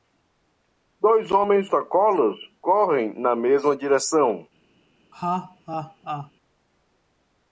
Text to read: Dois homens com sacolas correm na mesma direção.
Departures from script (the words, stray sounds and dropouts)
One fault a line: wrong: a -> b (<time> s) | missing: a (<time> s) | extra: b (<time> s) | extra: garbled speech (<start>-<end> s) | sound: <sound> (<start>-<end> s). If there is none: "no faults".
missing: com (1.7 s)
sound: laugh (5.1-6.3 s)